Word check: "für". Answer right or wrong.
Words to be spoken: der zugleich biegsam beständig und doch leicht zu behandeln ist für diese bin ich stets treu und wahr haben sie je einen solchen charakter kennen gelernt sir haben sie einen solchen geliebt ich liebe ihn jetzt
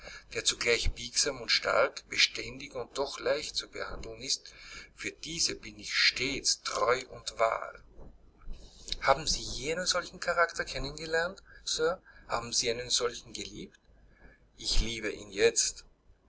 right